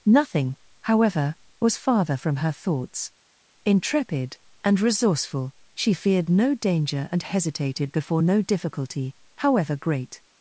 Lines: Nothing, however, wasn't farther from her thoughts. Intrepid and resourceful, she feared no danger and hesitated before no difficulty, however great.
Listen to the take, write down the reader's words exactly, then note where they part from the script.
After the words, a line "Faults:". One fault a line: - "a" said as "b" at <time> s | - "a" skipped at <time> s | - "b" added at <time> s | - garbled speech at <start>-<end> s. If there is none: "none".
Nothing, however, was farther from her thoughts. Intrepid and resourceful, she feared no danger and hesitated before no difficulty, however great.
Faults:
- "wasn't" said as "was" at 1.6 s